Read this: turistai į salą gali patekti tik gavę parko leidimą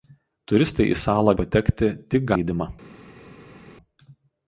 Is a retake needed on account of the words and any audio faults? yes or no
yes